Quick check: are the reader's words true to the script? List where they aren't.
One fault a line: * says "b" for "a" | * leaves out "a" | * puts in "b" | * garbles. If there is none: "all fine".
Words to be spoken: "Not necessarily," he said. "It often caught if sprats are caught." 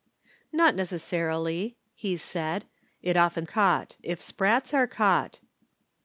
all fine